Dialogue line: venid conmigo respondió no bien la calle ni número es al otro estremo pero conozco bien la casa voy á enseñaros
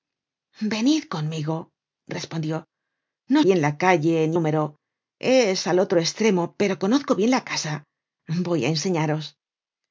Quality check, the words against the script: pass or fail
pass